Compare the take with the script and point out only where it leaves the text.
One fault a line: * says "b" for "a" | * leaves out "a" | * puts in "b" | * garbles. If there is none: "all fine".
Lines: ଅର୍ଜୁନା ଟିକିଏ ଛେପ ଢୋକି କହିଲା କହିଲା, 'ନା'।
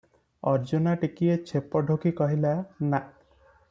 * leaves out "କହିଲା"